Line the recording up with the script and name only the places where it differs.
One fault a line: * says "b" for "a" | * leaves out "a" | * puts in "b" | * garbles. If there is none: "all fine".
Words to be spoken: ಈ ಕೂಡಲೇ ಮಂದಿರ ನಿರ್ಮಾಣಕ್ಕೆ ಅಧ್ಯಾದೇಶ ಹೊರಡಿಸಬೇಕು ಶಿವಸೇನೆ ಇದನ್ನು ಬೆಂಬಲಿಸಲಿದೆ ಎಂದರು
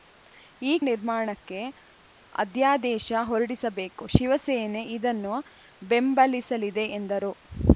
* leaves out "ಕೂಡಲೇ ಮಂದಿರ"